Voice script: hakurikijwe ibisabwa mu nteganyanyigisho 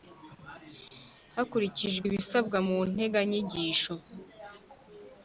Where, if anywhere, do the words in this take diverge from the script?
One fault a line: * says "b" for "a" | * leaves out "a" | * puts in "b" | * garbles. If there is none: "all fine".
all fine